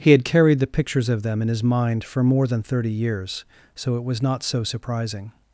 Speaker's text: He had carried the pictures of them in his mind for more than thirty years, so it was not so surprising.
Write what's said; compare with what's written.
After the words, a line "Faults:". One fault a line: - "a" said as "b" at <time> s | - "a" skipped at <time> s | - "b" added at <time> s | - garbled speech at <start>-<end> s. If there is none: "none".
He had carried the pictures of them in his mind for more than thirty years, so it was not so surprising.
Faults:
none